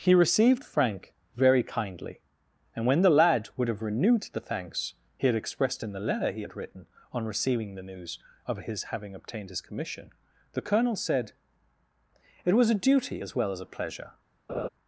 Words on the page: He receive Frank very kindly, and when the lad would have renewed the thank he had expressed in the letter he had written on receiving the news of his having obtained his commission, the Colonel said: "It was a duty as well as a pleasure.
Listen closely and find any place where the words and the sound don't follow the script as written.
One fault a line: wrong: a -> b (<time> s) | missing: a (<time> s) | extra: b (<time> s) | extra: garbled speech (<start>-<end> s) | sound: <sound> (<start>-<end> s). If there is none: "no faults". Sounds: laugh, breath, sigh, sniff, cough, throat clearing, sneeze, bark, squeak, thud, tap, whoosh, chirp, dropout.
wrong: receive -> received (0.1 s)
wrong: thank -> thanks (4.4 s)
sound: laugh (14.5-14.7 s)